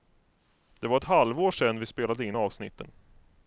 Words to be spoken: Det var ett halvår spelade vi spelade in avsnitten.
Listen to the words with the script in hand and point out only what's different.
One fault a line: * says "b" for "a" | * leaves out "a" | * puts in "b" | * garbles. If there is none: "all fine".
* says "sedan" for "spelade"